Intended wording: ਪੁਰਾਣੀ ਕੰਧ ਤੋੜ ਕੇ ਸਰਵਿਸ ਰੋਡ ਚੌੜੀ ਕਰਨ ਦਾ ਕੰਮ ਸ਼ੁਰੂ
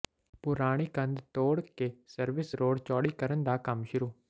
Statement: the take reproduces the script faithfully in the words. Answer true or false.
true